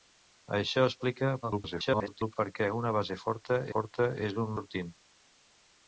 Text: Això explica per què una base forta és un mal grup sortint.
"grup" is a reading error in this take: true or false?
true